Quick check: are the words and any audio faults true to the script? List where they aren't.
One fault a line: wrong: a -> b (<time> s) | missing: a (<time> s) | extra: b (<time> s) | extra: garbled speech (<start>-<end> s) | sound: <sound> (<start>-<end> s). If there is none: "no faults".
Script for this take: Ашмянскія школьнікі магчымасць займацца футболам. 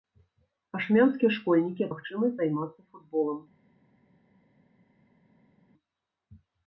no faults